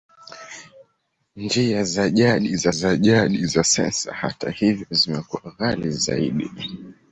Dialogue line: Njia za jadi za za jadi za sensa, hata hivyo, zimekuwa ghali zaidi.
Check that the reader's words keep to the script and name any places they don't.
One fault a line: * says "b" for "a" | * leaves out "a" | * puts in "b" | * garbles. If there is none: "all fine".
all fine